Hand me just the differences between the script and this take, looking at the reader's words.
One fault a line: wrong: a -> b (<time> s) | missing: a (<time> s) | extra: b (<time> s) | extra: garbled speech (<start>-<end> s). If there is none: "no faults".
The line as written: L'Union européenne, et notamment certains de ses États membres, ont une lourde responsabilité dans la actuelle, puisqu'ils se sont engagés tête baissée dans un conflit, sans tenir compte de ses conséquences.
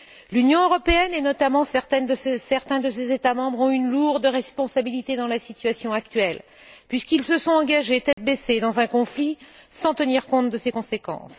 extra: situation (5.4 s)